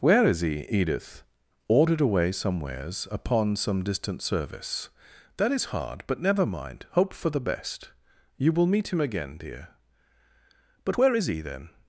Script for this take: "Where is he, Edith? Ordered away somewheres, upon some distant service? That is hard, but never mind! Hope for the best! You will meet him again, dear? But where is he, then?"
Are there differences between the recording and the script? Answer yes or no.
no